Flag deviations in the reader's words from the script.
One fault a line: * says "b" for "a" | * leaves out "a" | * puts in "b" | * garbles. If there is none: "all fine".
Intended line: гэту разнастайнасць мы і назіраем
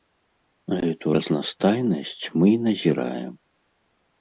all fine